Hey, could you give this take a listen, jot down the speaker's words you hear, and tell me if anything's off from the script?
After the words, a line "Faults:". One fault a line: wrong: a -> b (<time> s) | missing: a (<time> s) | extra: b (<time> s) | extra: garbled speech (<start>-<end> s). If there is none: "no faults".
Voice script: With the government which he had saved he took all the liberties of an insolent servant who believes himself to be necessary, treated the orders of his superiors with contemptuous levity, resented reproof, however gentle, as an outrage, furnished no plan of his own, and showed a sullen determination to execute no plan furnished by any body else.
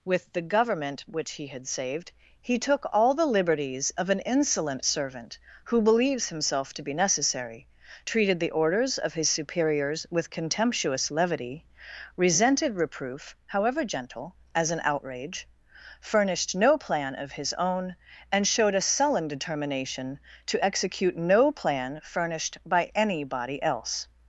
With the government which he had saved he took all the liberties of an insolent servant who believes himself to be necessary, treated the orders of his superiors with contemptuous levity, resented reproof, however gentle, as an outrage, furnished no plan of his own, and showed a sullen determination to execute no plan furnished by any body else.
Faults:
no faults